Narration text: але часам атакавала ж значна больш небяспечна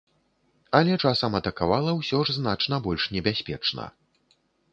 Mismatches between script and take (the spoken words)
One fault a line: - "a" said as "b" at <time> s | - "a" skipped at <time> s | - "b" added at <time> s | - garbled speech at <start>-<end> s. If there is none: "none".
- "ўсё" added at 2.0 s